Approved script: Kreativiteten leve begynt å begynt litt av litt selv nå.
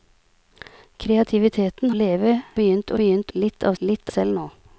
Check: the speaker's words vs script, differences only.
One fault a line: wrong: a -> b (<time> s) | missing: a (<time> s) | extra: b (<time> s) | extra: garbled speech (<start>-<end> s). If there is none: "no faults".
no faults